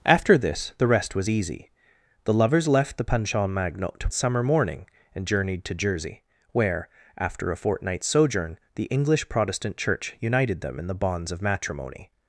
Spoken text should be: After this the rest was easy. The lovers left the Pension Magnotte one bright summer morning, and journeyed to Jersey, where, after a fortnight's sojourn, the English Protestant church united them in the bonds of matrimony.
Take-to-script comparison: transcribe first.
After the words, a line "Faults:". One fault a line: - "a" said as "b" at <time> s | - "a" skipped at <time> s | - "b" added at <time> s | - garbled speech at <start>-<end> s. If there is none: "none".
After this the rest was easy. The lovers left the Pension Magnotte summer morning, and journeyed to Jersey, where, after a fortnight's sojourn, the English Protestant church united them in the bonds of matrimony.
Faults:
- "one bright" skipped at 4.1 s